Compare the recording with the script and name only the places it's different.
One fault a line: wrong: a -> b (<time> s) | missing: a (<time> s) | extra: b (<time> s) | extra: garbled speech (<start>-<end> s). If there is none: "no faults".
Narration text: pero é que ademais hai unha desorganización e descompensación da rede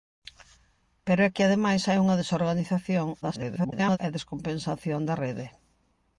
extra: garbled speech (3.2-4.0 s)